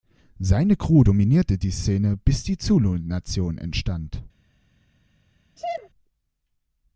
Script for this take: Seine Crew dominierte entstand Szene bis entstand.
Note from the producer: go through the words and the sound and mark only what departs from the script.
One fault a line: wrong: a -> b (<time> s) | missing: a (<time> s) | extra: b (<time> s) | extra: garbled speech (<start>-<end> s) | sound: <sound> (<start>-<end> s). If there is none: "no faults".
wrong: entstand -> die (1.6 s)
extra: die Zulu Nation (2.4 s)
sound: sneeze (5.6-5.9 s)